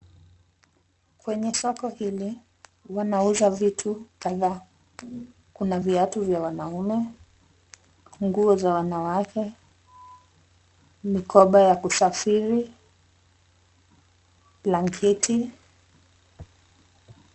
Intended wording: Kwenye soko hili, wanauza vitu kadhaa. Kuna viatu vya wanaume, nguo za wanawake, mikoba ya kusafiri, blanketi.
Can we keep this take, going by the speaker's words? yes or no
yes